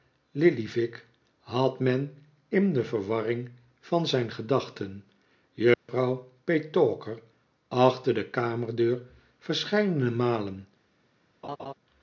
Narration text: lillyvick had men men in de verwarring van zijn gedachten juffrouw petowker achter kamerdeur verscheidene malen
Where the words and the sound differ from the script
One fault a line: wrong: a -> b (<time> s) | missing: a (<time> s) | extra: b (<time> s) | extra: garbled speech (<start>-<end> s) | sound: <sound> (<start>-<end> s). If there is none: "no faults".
missing: men (2.1 s)
sound: dropout (5.7-5.9 s)
extra: de (8.1 s)
sound: laugh (11.4-11.7 s)